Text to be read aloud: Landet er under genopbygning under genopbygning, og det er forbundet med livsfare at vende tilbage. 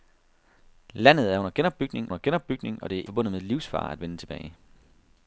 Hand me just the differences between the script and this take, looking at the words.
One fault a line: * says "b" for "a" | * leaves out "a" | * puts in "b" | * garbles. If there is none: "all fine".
all fine